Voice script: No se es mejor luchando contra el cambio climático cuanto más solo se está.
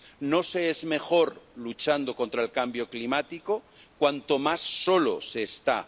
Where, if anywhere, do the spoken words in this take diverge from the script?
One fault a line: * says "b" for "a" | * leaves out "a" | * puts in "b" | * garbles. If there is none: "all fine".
all fine